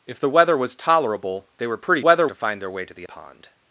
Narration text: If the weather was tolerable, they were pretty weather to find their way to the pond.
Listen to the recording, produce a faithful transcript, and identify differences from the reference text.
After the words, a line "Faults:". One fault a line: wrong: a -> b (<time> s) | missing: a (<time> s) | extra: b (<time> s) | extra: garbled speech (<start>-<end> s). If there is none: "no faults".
If the weather was tolerable, they were pretty weather to find their way to the pond.
Faults:
no faults